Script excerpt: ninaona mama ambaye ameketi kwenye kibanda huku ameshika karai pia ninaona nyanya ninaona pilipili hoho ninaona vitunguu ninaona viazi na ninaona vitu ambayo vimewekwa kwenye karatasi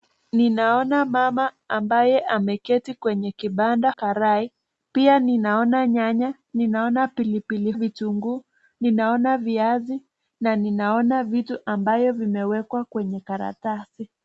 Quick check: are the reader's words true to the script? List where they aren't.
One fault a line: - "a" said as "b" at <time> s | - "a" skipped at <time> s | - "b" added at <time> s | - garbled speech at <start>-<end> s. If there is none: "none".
- "huku ameshika" skipped at 3.9 s
- "hoho ninaona" skipped at 7.7 s